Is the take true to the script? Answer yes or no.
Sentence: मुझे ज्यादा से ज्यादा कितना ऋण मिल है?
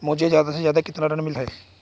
yes